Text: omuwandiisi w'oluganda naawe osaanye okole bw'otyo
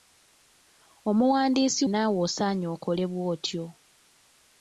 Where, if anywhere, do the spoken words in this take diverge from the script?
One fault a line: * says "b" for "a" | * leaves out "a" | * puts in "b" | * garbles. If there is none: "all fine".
* leaves out "w'oluganda"